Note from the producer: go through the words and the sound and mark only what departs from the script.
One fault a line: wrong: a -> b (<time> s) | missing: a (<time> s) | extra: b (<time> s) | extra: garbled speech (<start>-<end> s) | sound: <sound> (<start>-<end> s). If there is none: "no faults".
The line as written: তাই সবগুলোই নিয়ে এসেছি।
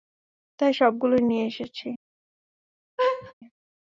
sound: laugh (3.0-3.3 s)